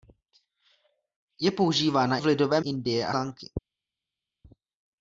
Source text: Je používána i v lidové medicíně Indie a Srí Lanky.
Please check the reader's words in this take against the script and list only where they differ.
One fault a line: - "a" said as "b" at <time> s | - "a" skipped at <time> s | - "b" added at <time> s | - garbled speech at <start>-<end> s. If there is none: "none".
- "i" skipped at 2.2 s
- "medicíně" skipped at 2.6 s
- "Srí" skipped at 3.1 s